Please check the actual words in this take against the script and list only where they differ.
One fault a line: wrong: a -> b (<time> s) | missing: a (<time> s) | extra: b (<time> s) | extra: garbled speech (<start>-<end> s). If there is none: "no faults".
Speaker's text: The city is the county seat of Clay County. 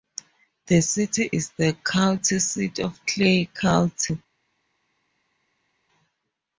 no faults